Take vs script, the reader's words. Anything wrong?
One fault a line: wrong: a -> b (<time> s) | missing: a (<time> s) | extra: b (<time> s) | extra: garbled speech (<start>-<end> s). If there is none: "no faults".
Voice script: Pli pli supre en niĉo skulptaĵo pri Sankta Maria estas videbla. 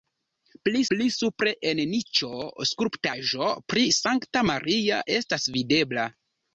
no faults